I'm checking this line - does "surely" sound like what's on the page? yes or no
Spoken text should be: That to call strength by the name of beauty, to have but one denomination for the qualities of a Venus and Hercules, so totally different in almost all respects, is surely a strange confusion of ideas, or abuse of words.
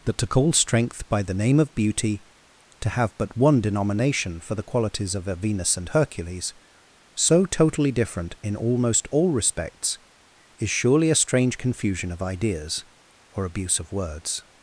yes